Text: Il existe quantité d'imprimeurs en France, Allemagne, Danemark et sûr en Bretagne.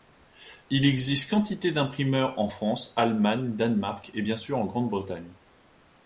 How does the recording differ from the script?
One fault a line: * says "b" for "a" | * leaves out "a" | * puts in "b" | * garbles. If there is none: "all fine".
* puts in "bien"
* puts in "Grande"